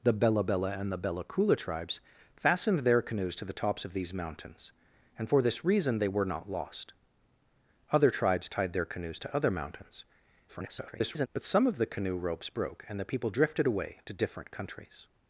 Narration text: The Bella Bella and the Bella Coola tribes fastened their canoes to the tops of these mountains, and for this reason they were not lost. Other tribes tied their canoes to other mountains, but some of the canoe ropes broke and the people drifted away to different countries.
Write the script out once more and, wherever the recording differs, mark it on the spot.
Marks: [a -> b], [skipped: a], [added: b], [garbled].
The Bella Bella and the Bella Coola tribes fastened their canoes to the tops of these mountains, and for this reason they were not lost. Other tribes tied their canoes to other mountains, [garbled] but some of the canoe ropes broke and the people drifted away to different countries.